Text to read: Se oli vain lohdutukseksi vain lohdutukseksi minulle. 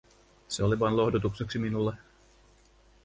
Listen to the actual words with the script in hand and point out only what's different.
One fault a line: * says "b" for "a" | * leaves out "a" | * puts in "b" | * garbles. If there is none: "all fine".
* leaves out "vain lohdutukseksi"